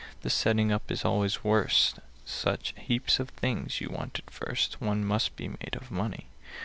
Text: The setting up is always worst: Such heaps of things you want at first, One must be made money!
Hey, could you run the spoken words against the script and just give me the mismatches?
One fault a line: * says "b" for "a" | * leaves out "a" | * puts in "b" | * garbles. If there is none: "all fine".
* puts in "of"